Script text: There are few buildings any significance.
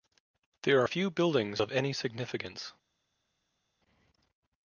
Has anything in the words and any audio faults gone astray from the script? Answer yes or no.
yes